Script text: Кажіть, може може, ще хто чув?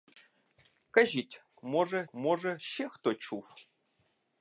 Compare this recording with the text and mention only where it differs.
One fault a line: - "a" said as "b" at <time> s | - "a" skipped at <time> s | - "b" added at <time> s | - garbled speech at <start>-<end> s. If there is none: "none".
none